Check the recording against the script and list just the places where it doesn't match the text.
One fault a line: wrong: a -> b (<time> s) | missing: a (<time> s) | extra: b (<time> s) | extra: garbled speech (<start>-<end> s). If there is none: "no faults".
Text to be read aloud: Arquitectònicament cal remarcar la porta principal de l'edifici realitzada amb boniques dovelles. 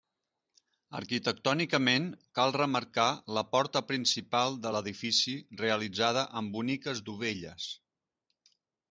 no faults